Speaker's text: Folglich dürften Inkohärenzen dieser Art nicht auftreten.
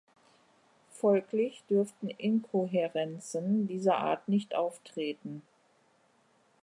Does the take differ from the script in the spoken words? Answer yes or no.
no